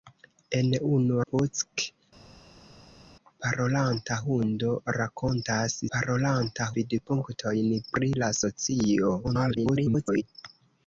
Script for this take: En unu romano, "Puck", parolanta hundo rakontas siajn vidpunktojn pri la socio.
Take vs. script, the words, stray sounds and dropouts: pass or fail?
fail